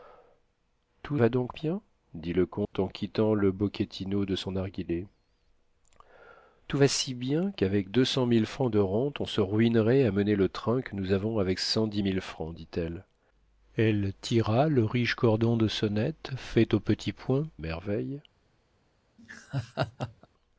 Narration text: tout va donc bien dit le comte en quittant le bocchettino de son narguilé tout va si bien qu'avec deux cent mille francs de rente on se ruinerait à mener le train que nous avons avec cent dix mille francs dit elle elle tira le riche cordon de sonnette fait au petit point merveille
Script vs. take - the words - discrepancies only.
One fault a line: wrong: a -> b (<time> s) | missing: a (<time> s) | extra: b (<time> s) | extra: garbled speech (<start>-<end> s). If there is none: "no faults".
no faults